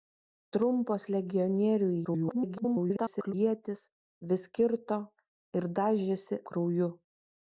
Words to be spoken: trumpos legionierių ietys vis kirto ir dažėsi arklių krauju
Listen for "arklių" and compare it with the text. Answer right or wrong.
wrong